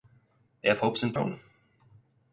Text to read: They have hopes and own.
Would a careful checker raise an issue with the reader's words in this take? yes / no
no